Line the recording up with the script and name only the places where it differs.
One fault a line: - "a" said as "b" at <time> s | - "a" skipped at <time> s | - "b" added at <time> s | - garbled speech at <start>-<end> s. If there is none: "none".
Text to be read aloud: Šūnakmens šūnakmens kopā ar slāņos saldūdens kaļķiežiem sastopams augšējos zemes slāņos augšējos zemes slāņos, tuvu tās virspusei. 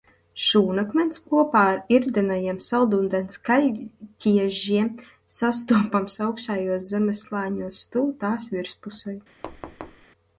- "šūnakmens" skipped at 1.2 s
- "slāņos" said as "irdenajiem" at 2.0 s
- "augšējos zemes slāņos" skipped at 7.8 s